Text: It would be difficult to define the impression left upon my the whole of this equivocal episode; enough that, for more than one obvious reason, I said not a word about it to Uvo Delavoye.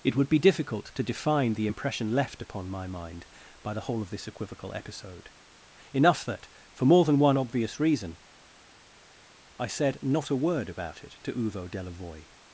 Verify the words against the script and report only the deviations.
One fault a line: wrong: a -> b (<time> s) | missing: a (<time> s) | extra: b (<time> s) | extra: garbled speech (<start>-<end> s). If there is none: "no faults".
extra: mind by (2.9 s)